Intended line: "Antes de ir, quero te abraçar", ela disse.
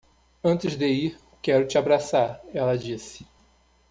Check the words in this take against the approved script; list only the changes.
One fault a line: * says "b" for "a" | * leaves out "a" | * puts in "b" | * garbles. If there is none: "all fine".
all fine